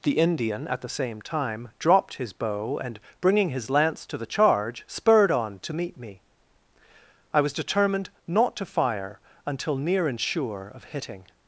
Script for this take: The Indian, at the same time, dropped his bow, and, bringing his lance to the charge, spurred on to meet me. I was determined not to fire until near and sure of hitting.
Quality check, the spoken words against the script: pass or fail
pass